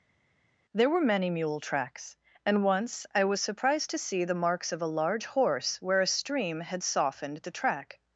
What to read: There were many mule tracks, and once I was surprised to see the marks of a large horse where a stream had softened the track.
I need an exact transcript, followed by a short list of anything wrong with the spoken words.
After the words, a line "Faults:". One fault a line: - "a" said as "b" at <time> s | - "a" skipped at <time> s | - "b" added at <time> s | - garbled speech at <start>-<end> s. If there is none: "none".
There were many mule tracks, and once I was surprised to see the marks of a large horse where a stream had softened the track.
Faults:
none